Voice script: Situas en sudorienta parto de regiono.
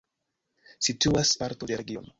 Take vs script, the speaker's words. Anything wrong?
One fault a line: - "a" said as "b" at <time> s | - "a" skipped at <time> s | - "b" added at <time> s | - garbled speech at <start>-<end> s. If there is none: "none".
- "en sudorienta" skipped at 1.3 s